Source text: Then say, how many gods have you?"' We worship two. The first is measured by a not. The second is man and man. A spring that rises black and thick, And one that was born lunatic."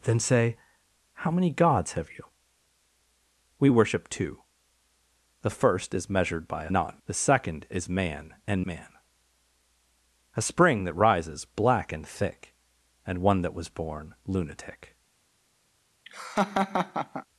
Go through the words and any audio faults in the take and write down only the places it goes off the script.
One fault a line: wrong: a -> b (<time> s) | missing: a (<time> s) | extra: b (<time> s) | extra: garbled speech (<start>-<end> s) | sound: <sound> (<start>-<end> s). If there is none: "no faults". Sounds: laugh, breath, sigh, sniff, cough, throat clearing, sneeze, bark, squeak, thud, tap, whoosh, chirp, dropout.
sound: laugh (16.1-17.3 s)